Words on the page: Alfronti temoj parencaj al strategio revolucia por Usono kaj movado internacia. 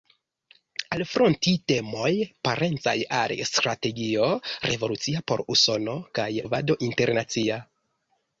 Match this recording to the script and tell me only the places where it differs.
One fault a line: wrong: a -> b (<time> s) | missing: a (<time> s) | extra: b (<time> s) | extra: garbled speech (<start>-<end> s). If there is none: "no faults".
no faults